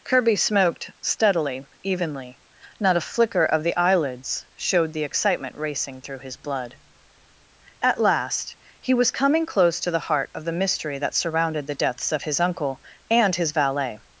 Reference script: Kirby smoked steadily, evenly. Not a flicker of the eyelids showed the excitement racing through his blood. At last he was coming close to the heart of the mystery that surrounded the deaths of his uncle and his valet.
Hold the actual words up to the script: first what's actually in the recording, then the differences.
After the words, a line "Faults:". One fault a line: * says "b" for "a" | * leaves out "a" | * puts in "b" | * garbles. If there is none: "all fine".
Kirby smoked steadily, evenly. Not a flicker of the eyelids showed the excitement racing through his blood. At last he was coming close to the heart of the mystery that surrounded the deaths of his uncle and his valet.
Faults:
all fine